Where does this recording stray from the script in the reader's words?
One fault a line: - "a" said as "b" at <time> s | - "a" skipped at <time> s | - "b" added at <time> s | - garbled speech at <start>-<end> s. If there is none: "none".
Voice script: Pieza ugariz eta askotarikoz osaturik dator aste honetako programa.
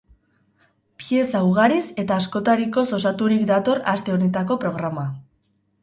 none